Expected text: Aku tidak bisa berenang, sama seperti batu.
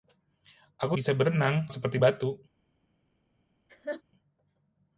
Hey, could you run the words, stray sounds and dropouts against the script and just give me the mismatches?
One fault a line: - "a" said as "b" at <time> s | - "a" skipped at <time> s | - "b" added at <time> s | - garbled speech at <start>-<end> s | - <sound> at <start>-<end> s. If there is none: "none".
- "tidak" skipped at 1.0 s
- "sama" skipped at 1.7 s
- laugh at 3.7-4.0 s